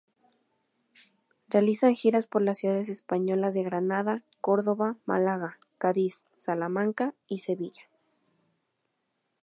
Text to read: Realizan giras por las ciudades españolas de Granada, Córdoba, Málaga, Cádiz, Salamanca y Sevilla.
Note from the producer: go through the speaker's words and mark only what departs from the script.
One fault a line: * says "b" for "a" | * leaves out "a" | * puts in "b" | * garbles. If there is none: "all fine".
all fine